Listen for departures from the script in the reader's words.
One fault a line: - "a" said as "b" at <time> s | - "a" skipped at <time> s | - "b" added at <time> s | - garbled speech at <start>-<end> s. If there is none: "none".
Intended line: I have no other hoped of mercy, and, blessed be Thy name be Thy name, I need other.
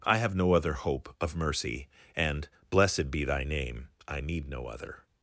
- "hoped" said as "hope" at 0.7 s
- "be Thy name" skipped at 3.9 s
- "no" added at 4.5 s